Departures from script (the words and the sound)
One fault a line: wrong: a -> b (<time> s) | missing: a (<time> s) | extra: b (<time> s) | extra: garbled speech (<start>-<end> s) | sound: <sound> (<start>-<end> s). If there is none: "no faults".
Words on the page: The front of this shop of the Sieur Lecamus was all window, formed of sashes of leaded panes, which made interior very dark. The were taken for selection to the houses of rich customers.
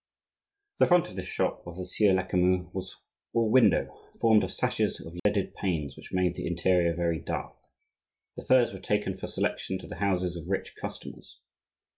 sound: dropout (5.2-5.3 s)
extra: the (6.4 s)
extra: furs (8.5 s)